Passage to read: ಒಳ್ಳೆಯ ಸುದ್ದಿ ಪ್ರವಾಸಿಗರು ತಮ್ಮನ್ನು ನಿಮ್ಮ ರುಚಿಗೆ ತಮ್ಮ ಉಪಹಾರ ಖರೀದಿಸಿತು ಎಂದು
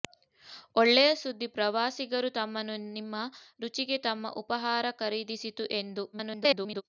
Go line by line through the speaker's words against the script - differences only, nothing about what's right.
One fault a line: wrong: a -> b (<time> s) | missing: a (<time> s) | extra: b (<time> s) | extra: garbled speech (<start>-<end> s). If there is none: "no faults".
extra: garbled speech (6.1-6.8 s)